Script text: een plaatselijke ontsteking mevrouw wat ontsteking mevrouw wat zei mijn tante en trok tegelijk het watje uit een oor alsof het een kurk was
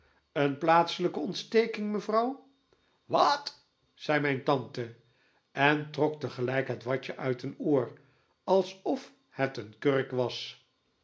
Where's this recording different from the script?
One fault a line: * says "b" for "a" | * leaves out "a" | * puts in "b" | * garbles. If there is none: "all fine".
* leaves out "ontsteking mevrouw wat"